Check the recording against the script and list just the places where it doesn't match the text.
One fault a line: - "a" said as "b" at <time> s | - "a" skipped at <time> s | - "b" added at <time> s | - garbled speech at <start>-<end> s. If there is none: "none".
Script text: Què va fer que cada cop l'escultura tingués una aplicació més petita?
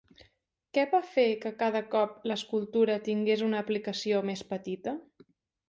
none